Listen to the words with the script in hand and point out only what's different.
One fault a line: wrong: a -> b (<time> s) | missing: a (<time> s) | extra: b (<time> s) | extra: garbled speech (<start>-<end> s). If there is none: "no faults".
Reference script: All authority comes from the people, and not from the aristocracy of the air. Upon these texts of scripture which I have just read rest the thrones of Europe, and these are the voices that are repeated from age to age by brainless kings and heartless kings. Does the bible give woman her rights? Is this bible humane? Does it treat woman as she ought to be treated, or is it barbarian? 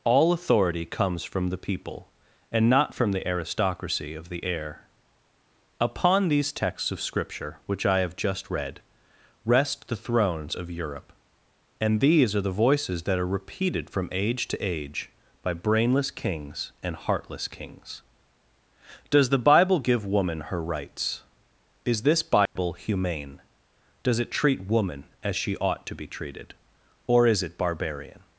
no faults